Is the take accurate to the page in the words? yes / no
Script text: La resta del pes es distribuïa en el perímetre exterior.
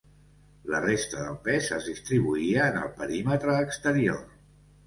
yes